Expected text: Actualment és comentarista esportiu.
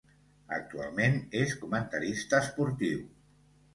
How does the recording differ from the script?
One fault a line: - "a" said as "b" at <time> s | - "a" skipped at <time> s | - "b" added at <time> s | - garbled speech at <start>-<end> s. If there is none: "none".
none